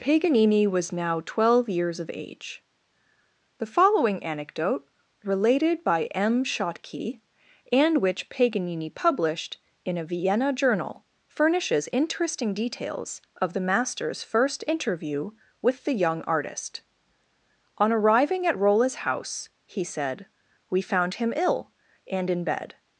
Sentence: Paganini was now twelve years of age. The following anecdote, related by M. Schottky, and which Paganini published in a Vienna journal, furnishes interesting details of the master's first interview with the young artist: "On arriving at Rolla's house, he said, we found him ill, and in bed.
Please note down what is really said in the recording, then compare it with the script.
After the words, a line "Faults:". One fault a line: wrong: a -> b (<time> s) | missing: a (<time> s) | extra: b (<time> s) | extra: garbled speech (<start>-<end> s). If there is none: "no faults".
Paganini was now twelve years of age. The following anecdote, related by M. Schottky, and which Paganini published in a Vienna journal, furnishes interesting details of the master's first interview with the young artist: "On arriving at Rolla's house, he said, we found him ill, and in bed.
Faults:
no faults